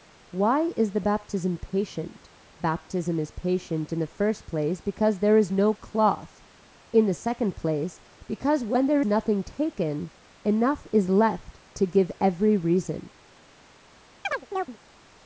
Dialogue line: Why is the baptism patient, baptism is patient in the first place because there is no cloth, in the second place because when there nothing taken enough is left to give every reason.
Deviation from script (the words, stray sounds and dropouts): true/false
true